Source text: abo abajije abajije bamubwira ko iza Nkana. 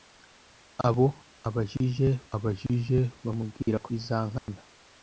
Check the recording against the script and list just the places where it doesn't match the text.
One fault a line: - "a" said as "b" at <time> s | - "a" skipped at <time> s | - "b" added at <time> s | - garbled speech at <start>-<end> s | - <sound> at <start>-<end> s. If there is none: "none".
- dropout at 4.4-4.5 s